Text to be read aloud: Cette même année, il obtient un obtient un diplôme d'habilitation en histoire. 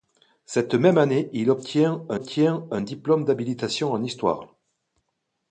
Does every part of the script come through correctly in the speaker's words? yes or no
yes